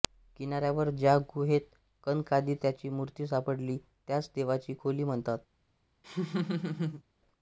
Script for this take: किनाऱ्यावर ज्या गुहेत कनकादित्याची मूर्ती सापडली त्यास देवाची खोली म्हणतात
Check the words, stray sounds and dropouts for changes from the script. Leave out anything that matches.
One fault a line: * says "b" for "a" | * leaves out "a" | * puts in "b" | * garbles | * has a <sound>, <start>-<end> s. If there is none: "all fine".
* has a laugh, 6.0-7.0 s